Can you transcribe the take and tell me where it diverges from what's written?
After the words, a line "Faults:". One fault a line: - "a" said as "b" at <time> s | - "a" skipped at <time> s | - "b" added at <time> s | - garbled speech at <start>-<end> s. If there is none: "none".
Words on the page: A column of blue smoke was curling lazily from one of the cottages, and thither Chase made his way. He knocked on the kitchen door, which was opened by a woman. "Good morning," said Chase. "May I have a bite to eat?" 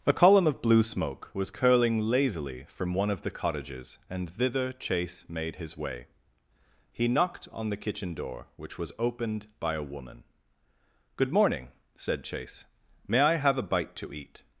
A column of blue smoke was curling lazily from one of the cottages, and thither Chase made his way. He knocked on the kitchen door, which was opened by a woman. "Good morning," said Chase. "May I have a bite to eat?"
Faults:
none